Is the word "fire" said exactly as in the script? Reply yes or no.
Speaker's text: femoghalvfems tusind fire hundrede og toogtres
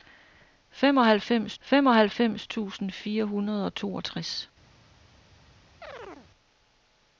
yes